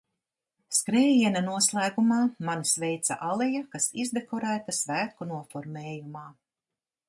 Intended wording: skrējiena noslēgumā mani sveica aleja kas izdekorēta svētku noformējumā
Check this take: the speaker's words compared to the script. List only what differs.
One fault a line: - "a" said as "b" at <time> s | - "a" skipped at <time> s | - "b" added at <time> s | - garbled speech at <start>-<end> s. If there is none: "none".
none